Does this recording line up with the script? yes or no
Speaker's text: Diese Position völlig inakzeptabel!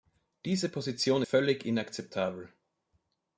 yes